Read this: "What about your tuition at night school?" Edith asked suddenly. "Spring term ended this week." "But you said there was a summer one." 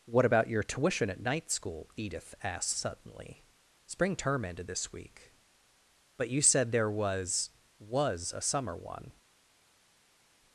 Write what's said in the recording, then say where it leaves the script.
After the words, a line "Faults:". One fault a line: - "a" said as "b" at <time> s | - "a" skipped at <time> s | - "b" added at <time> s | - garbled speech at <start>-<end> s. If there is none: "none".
"What about your tuition at night school?" Edith asked suddenly. "Spring term ended this week." "But you said there was was a summer one."
Faults:
- "was" added at 7.8 s